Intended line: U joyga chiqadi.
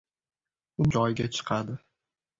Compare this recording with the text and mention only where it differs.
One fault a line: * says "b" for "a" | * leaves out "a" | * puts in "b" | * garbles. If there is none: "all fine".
all fine